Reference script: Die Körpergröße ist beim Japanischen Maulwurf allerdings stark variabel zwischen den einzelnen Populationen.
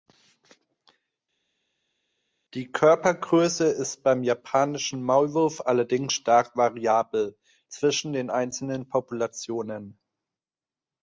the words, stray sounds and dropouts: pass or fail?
pass